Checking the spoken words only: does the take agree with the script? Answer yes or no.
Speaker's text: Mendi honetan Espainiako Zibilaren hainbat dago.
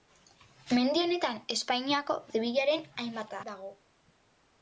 yes